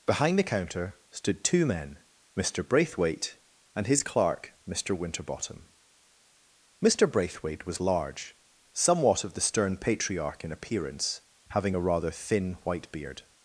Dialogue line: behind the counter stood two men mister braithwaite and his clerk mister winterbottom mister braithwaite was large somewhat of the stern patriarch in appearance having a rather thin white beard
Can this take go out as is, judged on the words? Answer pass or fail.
pass